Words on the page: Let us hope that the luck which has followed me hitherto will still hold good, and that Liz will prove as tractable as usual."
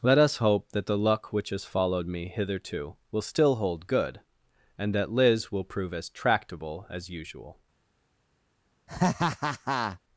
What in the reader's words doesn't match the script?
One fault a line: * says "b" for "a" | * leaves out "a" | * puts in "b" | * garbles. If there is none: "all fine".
all fine